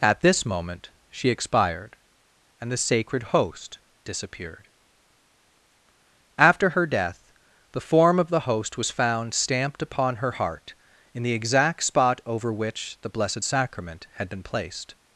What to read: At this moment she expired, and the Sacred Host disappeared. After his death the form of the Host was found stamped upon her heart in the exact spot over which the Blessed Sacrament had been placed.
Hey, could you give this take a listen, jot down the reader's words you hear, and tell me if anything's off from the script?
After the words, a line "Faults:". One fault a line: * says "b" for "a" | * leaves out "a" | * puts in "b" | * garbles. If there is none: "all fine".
At this moment she expired, and the Sacred Host disappeared. After her death the form of the Host was found stamped upon her heart in the exact spot over which the Blessed Sacrament had been placed.
Faults:
* says "her" for "his"